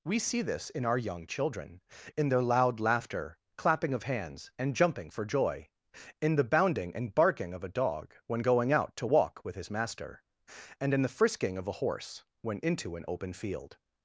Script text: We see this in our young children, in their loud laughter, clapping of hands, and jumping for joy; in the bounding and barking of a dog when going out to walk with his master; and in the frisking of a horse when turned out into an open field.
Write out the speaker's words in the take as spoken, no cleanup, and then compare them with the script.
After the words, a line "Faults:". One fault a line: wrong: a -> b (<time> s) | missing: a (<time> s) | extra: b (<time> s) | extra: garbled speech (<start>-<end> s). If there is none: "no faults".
We see this in our young children, in their loud laughter, clapping of hands, and jumping for joy; in the bounding and barking of a dog when going out to walk with his master; and in the frisking of a horse when into an open field.
Faults:
missing: turned out (12.6 s)